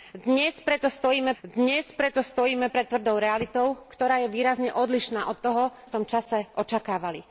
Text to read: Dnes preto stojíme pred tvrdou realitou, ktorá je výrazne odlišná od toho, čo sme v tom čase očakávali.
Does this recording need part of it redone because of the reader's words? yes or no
yes